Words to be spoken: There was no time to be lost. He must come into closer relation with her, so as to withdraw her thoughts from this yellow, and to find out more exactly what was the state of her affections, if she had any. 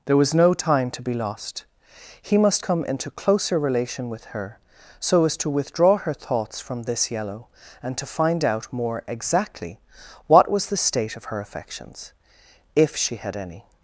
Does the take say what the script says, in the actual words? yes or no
yes